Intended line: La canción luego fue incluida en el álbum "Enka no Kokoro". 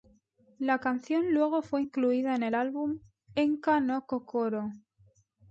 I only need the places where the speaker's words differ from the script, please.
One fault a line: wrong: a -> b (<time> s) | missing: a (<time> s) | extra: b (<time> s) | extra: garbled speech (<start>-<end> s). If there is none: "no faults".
no faults